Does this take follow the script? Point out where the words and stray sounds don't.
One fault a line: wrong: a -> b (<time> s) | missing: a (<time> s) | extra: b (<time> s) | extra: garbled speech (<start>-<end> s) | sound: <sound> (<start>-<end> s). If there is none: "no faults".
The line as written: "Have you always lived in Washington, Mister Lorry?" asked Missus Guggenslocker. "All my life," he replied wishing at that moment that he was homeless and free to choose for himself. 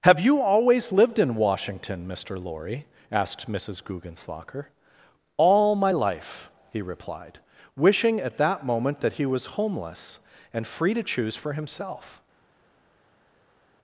no faults